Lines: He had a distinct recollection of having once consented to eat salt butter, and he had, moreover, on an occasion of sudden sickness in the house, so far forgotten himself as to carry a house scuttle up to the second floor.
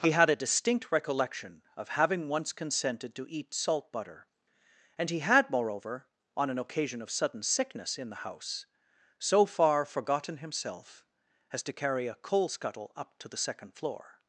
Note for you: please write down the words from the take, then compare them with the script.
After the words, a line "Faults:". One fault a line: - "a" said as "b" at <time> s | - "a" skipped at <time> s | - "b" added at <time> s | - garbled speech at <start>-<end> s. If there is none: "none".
He had a distinct recollection of having once consented to eat salt butter, and he had, moreover, on an occasion of sudden sickness in the house, so far forgotten himself as to carry a coal scuttle up to the second floor.
Faults:
- "house" said as "coal" at 12.2 s